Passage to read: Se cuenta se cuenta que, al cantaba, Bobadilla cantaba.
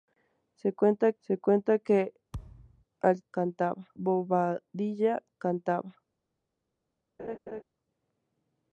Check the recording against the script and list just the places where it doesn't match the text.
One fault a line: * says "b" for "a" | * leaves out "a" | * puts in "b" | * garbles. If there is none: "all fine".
all fine